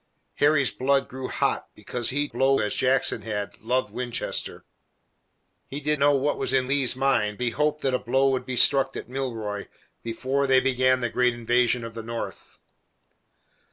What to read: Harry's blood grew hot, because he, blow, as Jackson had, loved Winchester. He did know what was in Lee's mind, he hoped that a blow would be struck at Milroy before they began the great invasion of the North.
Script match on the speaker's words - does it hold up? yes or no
yes